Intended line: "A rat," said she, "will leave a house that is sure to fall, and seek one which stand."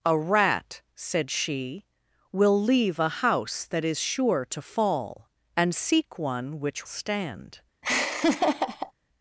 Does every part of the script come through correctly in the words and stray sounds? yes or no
no